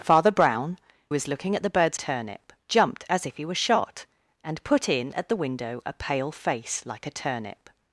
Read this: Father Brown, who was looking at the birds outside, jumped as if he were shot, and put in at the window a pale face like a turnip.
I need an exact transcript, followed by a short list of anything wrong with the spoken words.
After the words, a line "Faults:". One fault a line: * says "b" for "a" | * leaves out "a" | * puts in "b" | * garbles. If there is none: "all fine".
Father Brown, was looking at the birds turnip, jumped as if he were shot, and put in at the window a pale face like a turnip.
Faults:
* leaves out "who"
* says "turnip" for "outside"